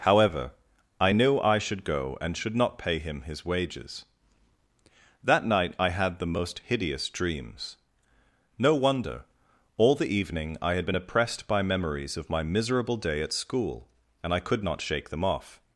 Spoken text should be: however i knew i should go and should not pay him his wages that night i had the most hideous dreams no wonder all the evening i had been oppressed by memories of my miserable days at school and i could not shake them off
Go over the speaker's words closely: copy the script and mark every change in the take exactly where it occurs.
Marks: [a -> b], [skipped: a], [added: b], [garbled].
however i knew i should go and should not pay him his wages that night i had the most hideous dreams no wonder all the evening i had been oppressed by memories of my miserable [days -> day] at school and i could not shake them off